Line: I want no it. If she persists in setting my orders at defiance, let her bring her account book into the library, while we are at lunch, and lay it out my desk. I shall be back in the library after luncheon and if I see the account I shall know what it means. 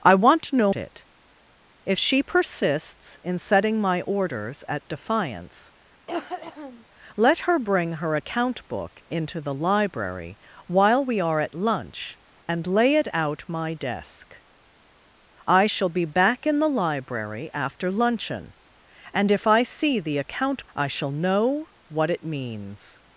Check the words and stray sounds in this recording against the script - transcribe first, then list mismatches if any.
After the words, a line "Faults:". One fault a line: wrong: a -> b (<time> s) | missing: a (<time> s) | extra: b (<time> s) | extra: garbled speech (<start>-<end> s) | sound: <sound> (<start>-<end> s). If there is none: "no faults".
I want no it. If she persists in setting my orders at defiance, let her bring her account book into the library, while we are at lunch, and lay it out my desk. I shall be back in the library after luncheon and if I see the account I shall know what it means.
Faults:
sound: cough (6.1-6.8 s)